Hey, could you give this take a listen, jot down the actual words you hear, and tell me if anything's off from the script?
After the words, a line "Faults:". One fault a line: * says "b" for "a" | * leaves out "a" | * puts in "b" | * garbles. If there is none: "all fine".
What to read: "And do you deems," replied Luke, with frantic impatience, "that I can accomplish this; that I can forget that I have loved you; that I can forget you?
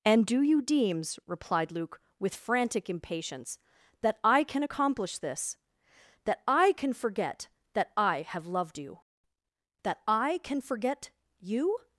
"And do you deems," replied Luke, with frantic impatience, "that I can accomplish this; that I can forget that I have loved you; that I can forget you?
Faults:
all fine